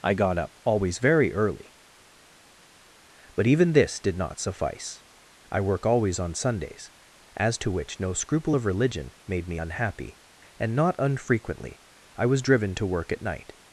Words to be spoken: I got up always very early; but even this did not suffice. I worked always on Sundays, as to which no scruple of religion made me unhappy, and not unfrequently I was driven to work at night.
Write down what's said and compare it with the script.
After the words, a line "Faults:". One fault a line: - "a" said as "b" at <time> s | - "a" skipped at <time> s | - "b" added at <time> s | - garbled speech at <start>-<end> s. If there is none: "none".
I got up always very early; but even this did not suffice. I work always on Sundays, as to which no scruple of religion made me unhappy, and not unfrequently I was driven to work at night.
Faults:
- "worked" said as "work" at 5.6 s